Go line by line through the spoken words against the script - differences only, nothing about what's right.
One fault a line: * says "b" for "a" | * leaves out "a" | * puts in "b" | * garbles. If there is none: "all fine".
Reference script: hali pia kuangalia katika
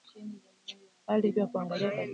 all fine